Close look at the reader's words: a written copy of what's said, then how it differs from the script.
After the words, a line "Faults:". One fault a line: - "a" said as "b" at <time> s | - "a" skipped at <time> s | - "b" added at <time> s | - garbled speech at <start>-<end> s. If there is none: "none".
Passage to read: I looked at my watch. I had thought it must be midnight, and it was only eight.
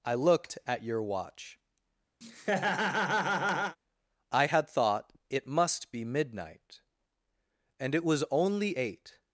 I looked at your watch. I had thought it must be midnight, and it was only eight.
Faults:
- "my" said as "your" at 0.8 s